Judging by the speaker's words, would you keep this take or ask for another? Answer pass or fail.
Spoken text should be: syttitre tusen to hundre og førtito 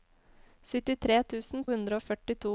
fail